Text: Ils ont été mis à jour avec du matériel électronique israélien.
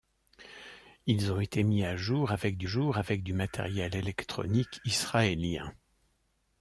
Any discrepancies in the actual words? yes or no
yes